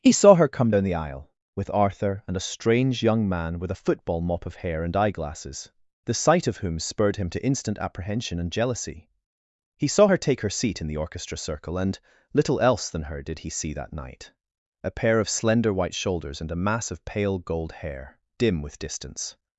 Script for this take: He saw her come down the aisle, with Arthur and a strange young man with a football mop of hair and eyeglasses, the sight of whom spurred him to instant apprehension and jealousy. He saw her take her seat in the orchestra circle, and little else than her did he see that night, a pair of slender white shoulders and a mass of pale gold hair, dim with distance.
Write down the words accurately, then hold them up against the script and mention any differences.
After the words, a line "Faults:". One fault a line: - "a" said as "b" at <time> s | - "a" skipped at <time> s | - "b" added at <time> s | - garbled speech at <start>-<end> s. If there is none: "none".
He saw her come down the aisle, with Arthur and a strange young man with a football mop of hair and eyeglasses, the sight of whom spurred him to instant apprehension and jealousy. He saw her take her seat in the orchestra circle, and little else than her did he see that night, a pair of slender white shoulders and a mass of pale gold hair, dim with distance.
Faults:
none